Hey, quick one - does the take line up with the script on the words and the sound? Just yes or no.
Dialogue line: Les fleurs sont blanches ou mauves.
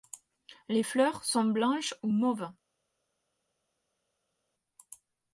yes